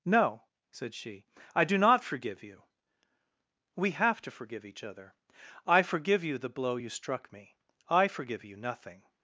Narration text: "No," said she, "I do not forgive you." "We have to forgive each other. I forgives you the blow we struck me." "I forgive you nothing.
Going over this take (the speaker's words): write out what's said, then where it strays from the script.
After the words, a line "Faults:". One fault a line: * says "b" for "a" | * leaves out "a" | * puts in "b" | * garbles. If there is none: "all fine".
"No," said she, "I do not forgive you." "We have to forgive each other. I forgive you the blow you struck me." "I forgive you nothing.
Faults:
* says "forgive" for "forgives"
* says "you" for "we"